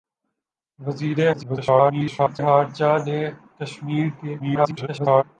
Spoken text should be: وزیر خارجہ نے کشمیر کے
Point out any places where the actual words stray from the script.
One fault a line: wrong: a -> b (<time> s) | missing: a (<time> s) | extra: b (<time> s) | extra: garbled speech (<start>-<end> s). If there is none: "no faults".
extra: garbled speech (1.3-2.4 s)
extra: garbled speech (4.4-5.2 s)